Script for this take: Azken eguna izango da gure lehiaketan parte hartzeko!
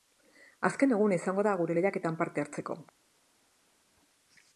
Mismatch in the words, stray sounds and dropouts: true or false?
false